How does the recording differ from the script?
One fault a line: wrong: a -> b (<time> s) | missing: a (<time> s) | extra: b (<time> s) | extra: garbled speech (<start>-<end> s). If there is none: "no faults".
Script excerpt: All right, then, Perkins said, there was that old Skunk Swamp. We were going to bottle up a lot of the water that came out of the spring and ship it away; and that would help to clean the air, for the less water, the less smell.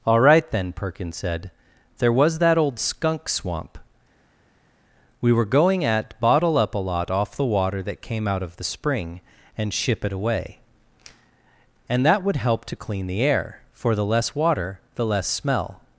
wrong: to -> at (5.8 s)
wrong: of -> off (7.1 s)